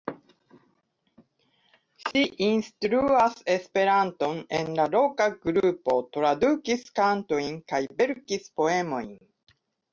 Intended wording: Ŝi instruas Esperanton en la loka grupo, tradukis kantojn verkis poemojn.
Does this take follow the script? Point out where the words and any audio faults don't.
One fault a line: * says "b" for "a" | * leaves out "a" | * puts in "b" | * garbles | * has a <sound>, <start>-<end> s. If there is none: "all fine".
* has a dropout, 2.1-2.1 s
* puts in "kaj"